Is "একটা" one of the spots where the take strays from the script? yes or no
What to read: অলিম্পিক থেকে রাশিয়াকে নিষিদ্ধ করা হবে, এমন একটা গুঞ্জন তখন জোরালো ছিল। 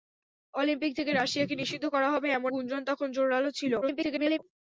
yes